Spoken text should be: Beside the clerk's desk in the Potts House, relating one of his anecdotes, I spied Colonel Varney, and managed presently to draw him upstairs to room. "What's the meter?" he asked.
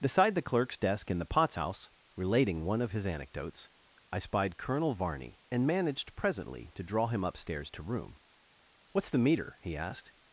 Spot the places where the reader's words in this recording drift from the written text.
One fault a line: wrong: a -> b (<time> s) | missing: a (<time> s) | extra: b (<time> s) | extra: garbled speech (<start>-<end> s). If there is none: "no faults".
no faults